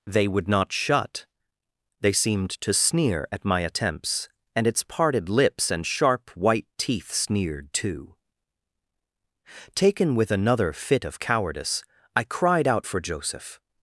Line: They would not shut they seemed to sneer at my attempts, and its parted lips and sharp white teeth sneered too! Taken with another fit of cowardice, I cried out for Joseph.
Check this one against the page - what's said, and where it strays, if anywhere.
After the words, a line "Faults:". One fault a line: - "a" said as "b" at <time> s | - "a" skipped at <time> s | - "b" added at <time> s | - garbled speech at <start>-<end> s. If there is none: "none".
They would not shut they seemed to sneer at my attempts, and its parted lips and sharp white teeth sneered too! Taken with another fit of cowardice, I cried out for Joseph.
Faults:
none